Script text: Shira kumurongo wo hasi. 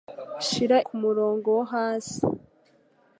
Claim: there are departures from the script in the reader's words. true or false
false